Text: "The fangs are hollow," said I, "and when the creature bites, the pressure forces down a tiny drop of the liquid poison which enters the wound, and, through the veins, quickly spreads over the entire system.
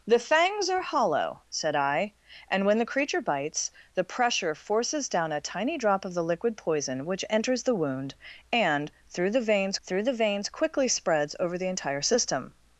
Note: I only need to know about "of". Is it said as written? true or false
true